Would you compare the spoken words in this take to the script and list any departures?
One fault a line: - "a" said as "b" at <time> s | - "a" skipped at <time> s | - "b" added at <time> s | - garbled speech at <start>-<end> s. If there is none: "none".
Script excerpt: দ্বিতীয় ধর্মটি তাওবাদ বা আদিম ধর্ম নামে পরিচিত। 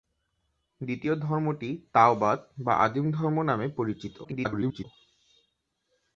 - garbled speech at 4.2-4.9 s